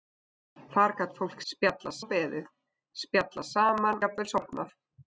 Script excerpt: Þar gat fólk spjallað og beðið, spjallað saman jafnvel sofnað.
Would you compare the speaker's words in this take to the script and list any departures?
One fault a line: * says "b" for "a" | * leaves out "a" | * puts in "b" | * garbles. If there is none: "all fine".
all fine